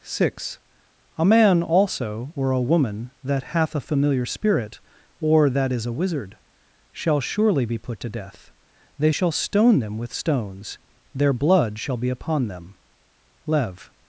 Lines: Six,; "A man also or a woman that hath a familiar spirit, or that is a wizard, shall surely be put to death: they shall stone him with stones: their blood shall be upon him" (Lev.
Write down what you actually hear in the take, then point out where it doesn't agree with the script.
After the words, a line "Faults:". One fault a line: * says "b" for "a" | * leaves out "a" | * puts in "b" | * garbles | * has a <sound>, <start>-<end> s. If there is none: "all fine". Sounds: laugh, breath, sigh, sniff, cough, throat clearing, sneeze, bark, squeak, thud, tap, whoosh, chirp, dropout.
Six,; "A man also or a woman that hath a familiar spirit, or that is a wizard, shall surely be put to death: they shall stone them with stones: their blood shall be upon them" (Lev.
Faults:
* says "them" for "him"
* says "them" for "him"